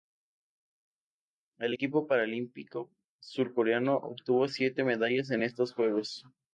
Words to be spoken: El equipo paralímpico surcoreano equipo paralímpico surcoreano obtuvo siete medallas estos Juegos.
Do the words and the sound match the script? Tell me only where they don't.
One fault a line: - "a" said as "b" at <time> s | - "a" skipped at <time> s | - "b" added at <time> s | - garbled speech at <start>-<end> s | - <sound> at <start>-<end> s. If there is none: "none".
- "equipo paralímpico surcoreano" skipped at 4.0 s
- "en" added at 5.3 s